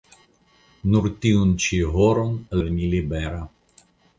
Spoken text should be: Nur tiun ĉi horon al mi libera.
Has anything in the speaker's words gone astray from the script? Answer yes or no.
no